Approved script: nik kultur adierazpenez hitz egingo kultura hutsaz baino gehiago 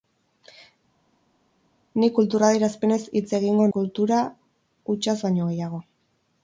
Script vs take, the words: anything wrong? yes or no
no